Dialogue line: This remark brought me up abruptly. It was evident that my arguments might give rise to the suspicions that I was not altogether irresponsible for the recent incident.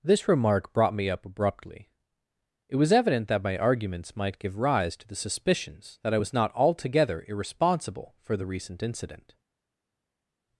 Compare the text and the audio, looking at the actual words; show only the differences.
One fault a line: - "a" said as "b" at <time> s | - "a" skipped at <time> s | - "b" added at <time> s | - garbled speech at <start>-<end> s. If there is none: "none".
none